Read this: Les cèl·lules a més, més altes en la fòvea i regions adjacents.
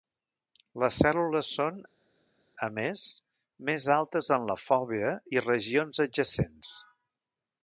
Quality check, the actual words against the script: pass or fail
fail